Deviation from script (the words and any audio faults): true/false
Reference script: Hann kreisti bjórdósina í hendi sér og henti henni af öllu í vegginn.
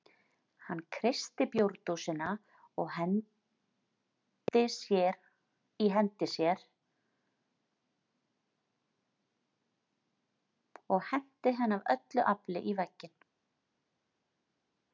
true